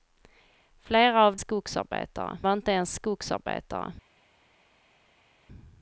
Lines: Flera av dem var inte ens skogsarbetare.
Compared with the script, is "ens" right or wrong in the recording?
right